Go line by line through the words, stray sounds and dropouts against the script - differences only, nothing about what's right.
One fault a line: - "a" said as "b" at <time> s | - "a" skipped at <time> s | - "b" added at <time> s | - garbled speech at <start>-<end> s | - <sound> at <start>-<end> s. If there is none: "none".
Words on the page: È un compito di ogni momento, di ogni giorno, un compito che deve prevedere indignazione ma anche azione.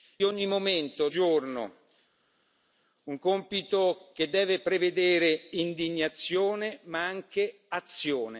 - "un compito di" skipped at 0.2 s
- "di ogni" skipped at 1.1 s